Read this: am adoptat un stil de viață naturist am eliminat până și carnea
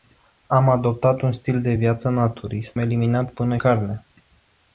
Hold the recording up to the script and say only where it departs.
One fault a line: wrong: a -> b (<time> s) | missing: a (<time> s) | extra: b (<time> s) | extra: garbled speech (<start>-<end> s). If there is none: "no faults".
missing: am (2.8 s)
missing: și (3.6 s)